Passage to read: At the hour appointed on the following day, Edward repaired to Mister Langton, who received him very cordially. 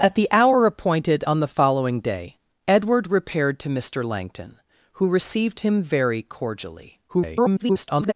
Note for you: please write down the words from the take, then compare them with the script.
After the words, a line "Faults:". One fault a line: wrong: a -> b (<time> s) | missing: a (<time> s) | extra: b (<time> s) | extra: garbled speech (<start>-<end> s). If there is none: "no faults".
At the hour appointed on the following day, Edward repaired to Mister Langton, who received him very cordially. [garbled]
Faults:
extra: garbled speech (7.1-8.1 s)